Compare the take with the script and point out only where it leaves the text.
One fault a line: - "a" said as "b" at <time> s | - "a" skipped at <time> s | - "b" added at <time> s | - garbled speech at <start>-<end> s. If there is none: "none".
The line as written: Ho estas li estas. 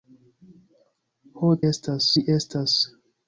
none